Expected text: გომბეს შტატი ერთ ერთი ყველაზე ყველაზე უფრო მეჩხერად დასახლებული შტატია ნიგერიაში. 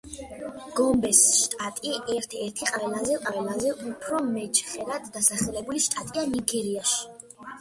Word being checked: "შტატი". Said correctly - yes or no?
yes